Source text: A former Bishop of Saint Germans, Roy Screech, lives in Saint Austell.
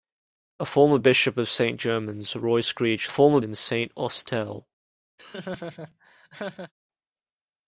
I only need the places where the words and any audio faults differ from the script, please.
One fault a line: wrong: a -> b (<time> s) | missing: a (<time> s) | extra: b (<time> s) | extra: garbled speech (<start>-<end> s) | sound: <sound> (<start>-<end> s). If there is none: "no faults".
wrong: lives -> former (3.1 s)
sound: laugh (5.2-6.7 s)